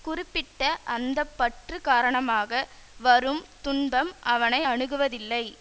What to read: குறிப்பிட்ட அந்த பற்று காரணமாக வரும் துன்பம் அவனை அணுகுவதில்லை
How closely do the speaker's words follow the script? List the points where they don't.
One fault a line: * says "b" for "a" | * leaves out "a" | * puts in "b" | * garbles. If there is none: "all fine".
all fine